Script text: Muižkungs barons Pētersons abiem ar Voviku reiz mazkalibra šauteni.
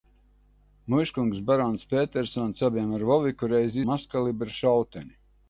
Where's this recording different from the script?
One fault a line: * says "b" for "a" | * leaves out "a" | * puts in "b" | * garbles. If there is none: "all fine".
all fine